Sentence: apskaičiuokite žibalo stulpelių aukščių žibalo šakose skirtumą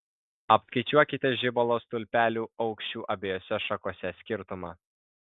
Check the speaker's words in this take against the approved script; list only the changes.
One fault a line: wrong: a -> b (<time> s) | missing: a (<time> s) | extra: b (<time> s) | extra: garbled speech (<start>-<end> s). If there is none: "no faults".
wrong: žibalo -> abiejose (3.2 s)